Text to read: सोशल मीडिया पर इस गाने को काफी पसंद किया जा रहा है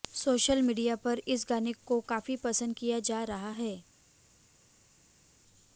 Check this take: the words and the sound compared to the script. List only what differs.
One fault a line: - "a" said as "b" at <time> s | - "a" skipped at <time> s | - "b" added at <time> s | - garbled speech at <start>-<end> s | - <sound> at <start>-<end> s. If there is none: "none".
none